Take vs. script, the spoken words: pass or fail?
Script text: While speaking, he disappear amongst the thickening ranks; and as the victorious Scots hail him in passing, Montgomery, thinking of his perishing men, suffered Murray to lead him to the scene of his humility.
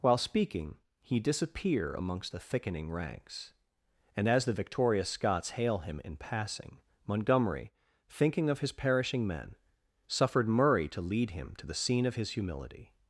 pass